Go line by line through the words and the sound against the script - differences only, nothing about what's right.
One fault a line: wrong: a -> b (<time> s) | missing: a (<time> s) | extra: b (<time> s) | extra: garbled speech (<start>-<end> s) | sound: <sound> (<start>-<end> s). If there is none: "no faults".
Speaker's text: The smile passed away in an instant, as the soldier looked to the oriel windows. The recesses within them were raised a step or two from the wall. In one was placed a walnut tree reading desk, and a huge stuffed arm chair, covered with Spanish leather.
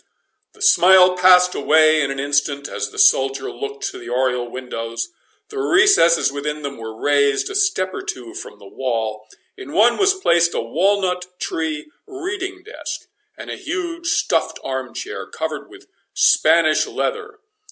no faults